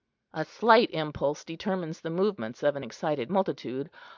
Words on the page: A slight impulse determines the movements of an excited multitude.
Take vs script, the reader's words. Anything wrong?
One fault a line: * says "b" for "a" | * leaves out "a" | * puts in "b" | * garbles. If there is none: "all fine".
all fine